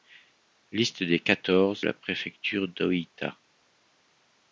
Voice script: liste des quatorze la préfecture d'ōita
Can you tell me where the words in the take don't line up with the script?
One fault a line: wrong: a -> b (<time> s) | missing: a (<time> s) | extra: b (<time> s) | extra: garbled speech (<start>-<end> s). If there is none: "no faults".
no faults